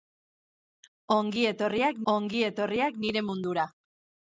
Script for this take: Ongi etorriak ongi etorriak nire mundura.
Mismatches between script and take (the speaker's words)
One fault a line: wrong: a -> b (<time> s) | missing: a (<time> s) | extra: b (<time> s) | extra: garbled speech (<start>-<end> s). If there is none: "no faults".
no faults